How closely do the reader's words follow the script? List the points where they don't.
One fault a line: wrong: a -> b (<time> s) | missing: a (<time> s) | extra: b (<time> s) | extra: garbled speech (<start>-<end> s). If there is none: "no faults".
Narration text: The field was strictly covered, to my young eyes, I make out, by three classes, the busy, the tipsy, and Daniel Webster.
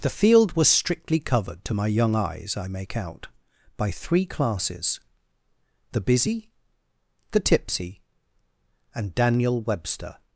no faults